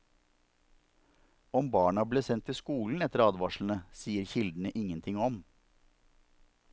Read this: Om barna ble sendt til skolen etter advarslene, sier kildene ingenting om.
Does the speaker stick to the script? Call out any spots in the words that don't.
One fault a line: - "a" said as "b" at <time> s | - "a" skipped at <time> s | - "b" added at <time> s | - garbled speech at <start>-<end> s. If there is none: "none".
none